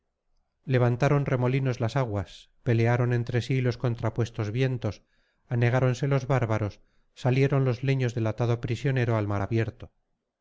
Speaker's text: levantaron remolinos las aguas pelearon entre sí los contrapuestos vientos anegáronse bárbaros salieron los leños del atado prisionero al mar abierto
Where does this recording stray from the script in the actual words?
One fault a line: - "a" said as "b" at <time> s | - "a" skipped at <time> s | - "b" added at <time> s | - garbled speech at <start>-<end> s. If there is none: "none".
- "los" added at 6.1 s